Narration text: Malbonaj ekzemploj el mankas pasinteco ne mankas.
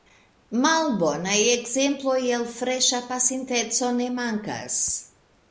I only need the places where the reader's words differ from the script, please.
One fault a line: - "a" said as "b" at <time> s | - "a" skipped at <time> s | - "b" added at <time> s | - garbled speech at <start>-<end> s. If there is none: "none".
- "mankas" said as "freŝa" at 2.5 s